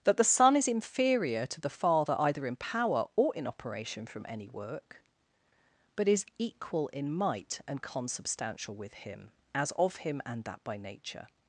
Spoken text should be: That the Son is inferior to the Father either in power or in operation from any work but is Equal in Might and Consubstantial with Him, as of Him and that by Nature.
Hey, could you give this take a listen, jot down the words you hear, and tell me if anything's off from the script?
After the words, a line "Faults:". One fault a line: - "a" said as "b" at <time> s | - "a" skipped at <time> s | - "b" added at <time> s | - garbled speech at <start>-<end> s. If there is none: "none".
That the Son is inferior to the Father either in power or in operation from any work but is Equal in Might and Consubstantial with Him, as of Him and that by Nature.
Faults:
none